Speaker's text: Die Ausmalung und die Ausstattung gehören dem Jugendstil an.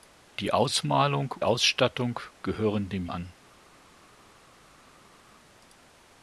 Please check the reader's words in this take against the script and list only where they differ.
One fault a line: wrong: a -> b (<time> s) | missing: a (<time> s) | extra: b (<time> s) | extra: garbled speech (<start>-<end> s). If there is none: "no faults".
missing: und die (1.4 s)
missing: Jugendstil (3.1 s)